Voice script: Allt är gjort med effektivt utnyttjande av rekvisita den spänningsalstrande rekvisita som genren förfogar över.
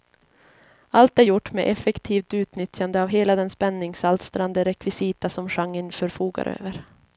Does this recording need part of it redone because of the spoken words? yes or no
yes